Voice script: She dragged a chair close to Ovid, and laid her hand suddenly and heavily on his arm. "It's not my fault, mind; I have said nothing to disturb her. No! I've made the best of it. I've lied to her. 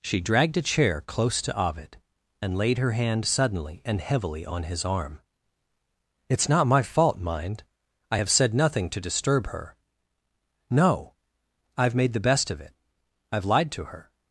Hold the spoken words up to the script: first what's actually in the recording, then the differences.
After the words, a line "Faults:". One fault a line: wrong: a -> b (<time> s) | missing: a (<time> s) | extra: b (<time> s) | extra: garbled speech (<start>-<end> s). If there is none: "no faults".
She dragged a chair close to Ovid, and laid her hand suddenly and heavily on his arm. "It's not my fault, mind; I have said nothing to disturb her. No! I've made the best of it. I've lied to her.
Faults:
no faults